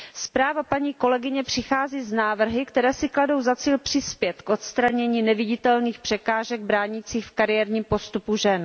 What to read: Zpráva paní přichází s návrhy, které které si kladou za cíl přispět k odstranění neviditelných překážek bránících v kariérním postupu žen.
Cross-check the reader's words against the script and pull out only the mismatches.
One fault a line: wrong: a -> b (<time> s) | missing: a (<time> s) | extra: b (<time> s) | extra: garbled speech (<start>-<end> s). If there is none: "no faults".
extra: kolegyně (0.9 s)
missing: které (2.9 s)